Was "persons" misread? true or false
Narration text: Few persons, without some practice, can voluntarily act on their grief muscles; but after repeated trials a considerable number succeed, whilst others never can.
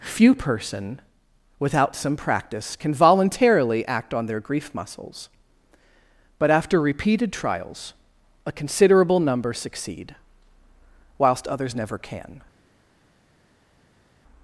true